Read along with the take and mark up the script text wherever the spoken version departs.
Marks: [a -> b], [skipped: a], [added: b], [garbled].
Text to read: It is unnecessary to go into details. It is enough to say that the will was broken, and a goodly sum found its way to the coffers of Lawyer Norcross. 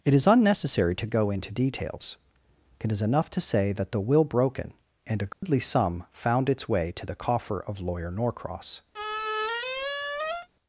It is unnecessary to go into details. It is enough to say that the will [skipped: was] broken, and a goodly sum found its way to the [coffers -> coffer] of Lawyer Norcross.